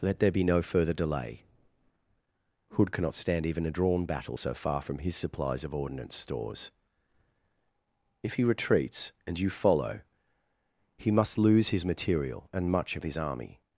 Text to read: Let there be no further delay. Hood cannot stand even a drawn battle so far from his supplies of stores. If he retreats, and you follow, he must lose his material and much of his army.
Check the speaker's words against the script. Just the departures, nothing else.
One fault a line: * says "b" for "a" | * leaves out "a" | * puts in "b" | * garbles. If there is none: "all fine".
* puts in "ordnance"